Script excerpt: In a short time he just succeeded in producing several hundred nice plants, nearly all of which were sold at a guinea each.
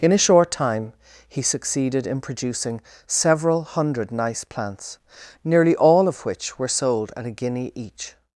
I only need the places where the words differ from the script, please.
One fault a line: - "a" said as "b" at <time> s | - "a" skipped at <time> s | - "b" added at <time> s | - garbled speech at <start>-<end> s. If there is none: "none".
- "just" skipped at 1.4 s